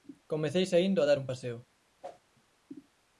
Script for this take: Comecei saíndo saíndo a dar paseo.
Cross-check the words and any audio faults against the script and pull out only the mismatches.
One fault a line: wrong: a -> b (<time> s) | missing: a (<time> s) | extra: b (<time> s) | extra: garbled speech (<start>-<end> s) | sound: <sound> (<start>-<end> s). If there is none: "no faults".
missing: saíndo (1.0 s)
extra: un (1.2 s)
sound: whoosh (2.0-2.2 s)